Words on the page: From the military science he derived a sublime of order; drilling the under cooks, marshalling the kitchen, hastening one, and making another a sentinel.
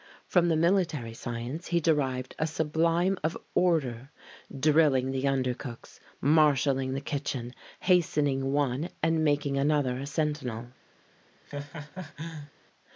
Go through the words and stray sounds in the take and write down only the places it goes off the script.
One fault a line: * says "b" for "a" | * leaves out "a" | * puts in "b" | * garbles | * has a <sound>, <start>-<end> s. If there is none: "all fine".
* has a laugh, 11.5-12.5 s